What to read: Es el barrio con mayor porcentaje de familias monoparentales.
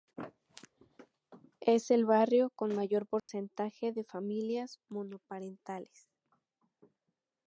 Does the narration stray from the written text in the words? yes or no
no